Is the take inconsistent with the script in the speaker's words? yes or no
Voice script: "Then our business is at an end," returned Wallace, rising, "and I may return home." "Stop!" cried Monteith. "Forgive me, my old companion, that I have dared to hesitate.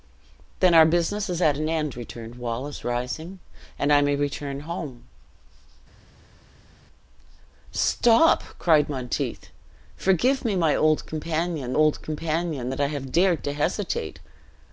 yes